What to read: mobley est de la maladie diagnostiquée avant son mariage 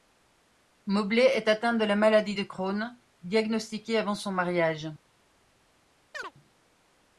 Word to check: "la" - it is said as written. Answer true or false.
true